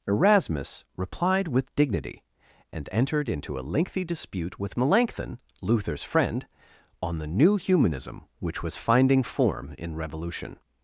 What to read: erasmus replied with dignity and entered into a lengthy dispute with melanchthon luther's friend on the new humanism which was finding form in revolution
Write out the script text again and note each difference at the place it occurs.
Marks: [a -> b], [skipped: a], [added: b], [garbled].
erasmus replied with dignity and entered into a lengthy dispute with melanchthon luther's friend on the new humanism which was finding form in revolution